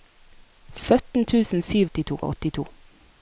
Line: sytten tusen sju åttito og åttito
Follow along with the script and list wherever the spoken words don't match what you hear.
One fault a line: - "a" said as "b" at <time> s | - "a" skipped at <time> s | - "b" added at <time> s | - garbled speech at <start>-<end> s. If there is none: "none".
none